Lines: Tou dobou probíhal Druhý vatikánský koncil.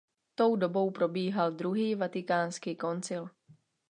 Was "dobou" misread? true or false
false